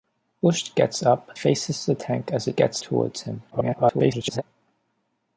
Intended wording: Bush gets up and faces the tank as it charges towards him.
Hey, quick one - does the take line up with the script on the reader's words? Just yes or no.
no